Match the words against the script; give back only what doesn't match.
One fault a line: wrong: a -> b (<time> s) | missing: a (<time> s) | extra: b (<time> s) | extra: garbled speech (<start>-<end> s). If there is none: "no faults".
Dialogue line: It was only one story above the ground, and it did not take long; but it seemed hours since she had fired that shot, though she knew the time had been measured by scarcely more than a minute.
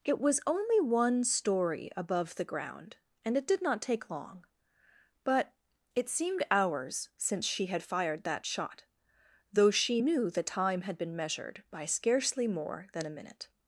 no faults